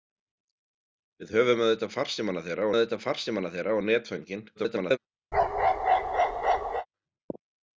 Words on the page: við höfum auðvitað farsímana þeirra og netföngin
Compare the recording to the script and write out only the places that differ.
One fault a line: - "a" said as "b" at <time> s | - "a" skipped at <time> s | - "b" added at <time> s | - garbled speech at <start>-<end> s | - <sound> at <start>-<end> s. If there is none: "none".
- "auðvitað farsímana þeirra" added at 2.8 s
- garbled speech at 4.6-5.0 s
- bark at 5.3-6.9 s